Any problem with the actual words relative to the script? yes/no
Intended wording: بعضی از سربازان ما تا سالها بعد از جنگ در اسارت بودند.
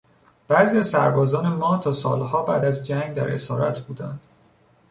no